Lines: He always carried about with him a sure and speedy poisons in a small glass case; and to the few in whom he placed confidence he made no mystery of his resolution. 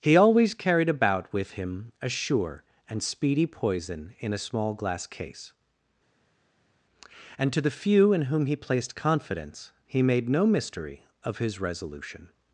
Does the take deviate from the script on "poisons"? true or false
true